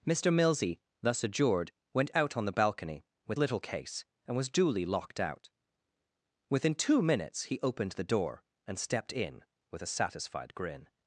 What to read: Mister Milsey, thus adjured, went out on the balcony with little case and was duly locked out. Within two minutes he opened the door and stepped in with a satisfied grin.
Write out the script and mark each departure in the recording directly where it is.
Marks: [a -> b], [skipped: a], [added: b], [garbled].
Mister Milsey, thus adjured, went out on the balcony with little case and was duly locked out. Within two minutes he opened the door and stepped in with a satisfied grin.